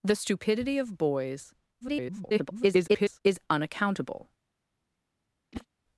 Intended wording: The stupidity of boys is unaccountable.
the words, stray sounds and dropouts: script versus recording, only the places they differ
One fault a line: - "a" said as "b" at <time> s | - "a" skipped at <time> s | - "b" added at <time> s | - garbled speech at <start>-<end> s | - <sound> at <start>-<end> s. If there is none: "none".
- garbled speech at 1.8-3.2 s
- whoosh at 5.5-5.7 s